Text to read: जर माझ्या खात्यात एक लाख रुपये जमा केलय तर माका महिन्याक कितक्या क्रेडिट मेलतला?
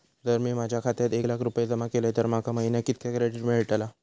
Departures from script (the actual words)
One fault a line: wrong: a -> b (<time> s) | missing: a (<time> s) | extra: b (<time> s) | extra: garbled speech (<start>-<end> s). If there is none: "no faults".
extra: मी (0.4 s)